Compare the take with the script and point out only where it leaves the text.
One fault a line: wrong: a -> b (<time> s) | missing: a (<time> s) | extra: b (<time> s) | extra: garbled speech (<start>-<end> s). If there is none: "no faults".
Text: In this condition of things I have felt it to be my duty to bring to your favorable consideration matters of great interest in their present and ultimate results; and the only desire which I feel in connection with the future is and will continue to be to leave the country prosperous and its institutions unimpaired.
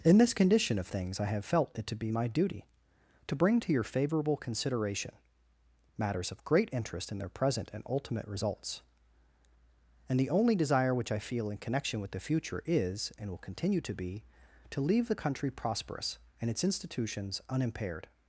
no faults